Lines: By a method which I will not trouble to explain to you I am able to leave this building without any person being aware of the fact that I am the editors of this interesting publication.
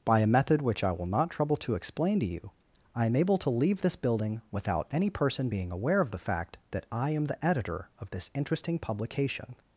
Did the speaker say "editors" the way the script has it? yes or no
no